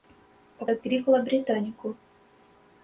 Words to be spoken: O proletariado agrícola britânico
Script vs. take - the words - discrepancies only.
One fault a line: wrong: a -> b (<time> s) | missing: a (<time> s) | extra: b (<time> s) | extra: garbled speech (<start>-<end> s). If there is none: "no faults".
missing: proletariado (0.7 s)